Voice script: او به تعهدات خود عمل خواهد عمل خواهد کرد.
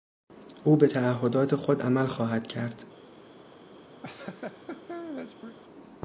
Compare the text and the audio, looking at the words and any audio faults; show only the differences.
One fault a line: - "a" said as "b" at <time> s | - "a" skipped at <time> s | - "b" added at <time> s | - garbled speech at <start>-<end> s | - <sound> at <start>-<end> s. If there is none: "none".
- "عمل خواهد" skipped at 2.5 s
- laugh at 4.0-5.6 s